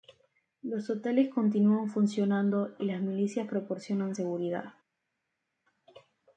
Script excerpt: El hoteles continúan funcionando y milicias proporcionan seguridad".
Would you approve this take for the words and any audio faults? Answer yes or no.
no